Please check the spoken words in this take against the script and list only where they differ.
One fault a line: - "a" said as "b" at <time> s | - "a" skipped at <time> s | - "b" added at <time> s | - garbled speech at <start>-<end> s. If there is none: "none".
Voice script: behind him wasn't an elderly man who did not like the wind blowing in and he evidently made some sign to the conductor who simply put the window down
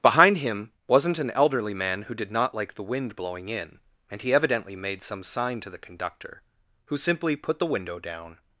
none